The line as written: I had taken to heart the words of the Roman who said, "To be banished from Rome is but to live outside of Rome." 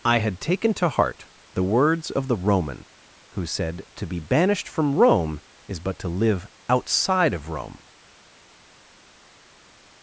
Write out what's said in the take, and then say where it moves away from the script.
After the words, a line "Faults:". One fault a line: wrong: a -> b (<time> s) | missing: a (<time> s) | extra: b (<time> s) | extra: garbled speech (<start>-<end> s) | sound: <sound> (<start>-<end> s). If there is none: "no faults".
I had taken to heart the words of the Roman who said, "To be banished from Rome is but to live outside of Rome."
Faults:
no faults